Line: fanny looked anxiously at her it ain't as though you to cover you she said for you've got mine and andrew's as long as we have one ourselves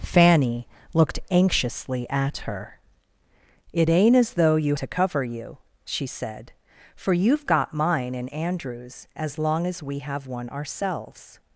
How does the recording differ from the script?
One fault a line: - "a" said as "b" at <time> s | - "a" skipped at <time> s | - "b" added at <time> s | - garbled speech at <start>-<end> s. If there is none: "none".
none